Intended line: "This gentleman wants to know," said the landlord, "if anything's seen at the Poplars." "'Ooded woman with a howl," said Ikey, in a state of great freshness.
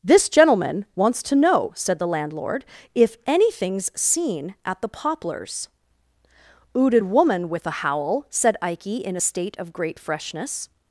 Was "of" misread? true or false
false